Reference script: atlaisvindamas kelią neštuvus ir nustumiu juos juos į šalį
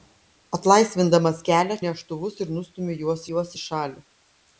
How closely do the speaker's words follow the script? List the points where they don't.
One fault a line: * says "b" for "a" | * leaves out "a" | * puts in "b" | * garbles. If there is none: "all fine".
all fine